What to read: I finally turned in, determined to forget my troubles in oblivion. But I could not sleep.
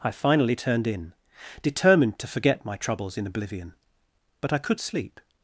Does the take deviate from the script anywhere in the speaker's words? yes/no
yes